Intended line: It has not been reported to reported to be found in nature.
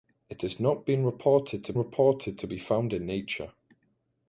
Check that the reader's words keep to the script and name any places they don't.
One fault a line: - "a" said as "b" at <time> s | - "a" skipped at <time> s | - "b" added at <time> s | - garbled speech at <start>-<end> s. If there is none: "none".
none